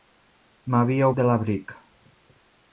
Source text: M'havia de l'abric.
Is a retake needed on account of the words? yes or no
no